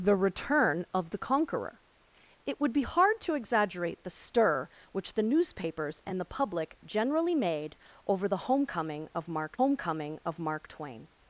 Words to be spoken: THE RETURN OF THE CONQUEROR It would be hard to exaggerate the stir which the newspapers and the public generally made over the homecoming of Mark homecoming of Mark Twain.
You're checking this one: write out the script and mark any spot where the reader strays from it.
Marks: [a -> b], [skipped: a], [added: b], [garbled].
THE RETURN OF THE CONQUEROR It would be hard to exaggerate the stir which the newspapers and the public generally made over the homecoming of Mark homecoming of Mark Twain.